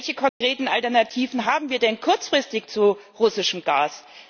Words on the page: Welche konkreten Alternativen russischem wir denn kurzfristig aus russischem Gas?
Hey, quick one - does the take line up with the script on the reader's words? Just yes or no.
no